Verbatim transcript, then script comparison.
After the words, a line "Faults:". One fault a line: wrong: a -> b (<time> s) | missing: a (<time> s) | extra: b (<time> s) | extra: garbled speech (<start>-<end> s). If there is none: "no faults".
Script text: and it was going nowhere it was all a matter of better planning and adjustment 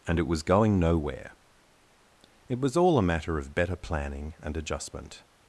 and it was going nowhere it was all a matter of better planning and adjustment
Faults:
no faults